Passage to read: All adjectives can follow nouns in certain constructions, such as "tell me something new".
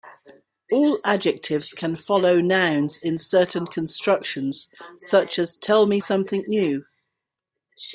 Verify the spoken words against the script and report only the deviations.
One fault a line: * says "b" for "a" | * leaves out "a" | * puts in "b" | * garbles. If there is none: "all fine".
all fine